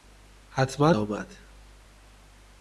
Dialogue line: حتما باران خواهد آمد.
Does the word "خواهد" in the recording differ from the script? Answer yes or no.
yes